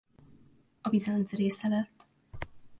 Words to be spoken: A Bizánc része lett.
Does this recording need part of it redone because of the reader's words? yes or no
no